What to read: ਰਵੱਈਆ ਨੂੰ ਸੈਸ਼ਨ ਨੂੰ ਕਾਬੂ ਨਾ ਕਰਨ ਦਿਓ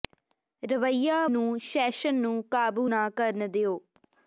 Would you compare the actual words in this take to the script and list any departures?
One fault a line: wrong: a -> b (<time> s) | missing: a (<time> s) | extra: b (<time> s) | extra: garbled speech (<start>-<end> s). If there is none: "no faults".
no faults